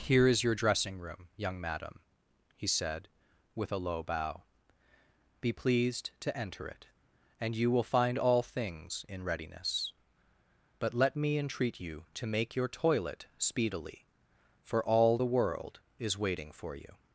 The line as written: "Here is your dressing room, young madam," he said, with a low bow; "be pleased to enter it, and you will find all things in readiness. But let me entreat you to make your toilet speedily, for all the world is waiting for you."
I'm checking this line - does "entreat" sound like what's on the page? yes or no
yes